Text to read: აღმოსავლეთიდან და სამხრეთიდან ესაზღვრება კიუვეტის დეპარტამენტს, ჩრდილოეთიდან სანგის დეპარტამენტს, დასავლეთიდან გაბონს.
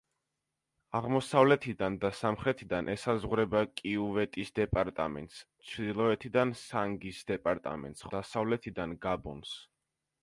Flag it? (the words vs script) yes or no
no